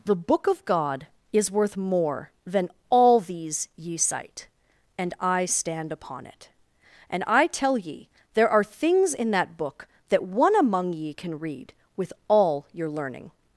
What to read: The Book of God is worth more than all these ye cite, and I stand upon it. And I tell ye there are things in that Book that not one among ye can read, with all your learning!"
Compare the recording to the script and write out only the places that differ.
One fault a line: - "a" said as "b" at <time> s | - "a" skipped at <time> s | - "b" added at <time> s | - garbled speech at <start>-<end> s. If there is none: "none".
- "not" skipped at 10.2 s